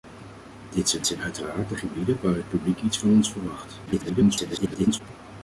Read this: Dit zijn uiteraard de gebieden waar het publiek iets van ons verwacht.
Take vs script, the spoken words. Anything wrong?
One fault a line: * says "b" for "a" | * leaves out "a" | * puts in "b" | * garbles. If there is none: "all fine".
* puts in "zijn"
* garbles